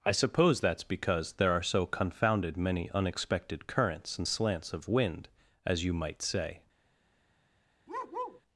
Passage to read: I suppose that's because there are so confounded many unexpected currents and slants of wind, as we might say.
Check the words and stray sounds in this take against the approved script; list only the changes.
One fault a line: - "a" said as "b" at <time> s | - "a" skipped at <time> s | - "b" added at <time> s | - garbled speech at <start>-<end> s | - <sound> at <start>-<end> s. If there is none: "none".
- "we" said as "you" at 5.8 s
- bark at 7.9-8.4 s